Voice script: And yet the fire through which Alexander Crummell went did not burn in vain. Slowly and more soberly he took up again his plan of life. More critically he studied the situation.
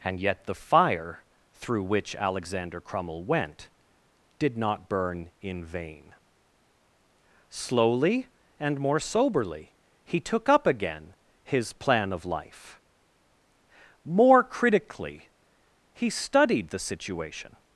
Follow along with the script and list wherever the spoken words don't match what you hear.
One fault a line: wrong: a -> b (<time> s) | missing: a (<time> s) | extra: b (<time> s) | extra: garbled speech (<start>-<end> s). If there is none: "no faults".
no faults